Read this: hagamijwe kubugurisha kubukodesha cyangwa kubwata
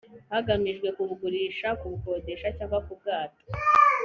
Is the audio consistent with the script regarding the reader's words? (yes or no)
yes